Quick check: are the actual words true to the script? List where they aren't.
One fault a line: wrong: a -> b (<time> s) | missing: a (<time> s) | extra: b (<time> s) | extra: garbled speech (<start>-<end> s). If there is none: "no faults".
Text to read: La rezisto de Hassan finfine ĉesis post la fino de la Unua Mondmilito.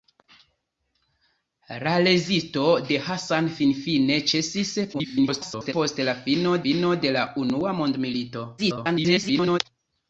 extra: garbled speech (4.9-5.7 s)
extra: fino (6.6 s)
extra: garbled speech (8.6-9.6 s)